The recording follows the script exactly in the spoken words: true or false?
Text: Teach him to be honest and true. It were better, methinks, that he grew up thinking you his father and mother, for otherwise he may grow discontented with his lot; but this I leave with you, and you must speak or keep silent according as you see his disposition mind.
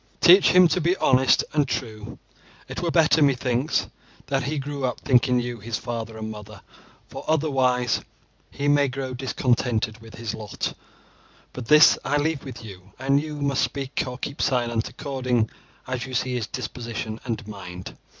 false